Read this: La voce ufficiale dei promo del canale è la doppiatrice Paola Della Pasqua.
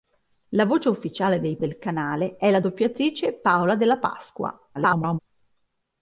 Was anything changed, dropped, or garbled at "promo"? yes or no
yes